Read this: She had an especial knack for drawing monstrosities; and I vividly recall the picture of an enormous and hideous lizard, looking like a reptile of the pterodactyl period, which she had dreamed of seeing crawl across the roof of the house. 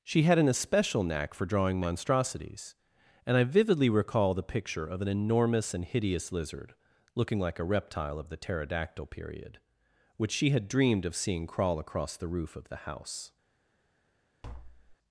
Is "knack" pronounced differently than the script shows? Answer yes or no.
no